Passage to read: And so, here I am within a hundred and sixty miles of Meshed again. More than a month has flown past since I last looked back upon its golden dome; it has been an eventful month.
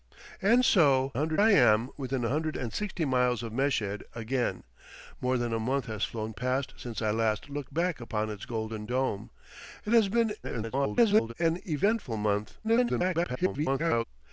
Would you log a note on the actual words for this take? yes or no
yes